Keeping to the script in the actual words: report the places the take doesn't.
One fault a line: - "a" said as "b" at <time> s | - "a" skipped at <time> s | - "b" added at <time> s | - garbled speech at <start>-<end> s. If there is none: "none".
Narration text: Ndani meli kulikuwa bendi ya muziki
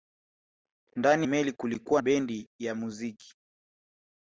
none